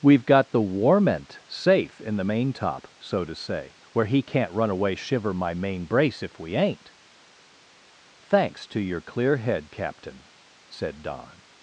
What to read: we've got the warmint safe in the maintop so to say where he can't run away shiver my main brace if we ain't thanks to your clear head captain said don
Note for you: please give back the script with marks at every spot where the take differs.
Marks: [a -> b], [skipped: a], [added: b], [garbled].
we've got the warmint safe in the maintop so to say where he can't run away shiver my main brace if we ain't thanks to your clear head captain said don